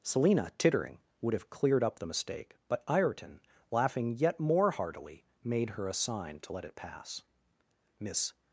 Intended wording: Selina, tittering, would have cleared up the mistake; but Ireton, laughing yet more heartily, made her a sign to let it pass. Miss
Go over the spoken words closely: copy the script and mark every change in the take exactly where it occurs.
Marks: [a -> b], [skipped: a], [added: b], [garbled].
Selina, tittering, would have cleared up the mistake; but Ireton, laughing yet more heartily, made her a sign to let it pass. Miss